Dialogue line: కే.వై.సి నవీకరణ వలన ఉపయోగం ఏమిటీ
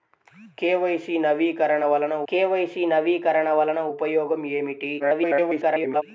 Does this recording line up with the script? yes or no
no